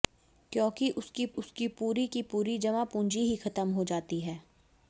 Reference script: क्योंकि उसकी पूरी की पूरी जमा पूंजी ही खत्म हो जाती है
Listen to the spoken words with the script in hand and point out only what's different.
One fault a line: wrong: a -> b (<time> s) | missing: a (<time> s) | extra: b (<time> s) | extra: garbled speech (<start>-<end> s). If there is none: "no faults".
extra: उसकी (1.3 s)